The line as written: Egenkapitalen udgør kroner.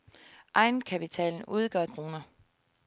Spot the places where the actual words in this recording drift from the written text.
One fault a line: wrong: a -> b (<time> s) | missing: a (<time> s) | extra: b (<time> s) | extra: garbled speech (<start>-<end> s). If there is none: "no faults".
no faults